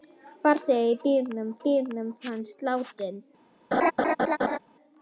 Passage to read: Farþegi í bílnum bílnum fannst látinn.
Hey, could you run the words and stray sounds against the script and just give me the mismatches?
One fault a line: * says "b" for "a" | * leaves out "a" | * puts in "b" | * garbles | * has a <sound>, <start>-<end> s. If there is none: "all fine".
* has a laugh, 3.7-4.6 s